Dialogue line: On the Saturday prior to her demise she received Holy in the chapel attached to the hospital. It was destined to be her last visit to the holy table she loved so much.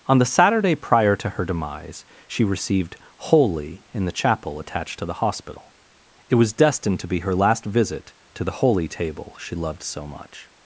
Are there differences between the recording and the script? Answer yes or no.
no